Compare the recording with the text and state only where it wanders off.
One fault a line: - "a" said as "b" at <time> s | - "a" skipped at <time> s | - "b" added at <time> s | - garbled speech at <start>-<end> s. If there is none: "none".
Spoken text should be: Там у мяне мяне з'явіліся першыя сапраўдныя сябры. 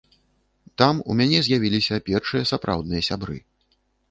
- "мяне" skipped at 1.4 s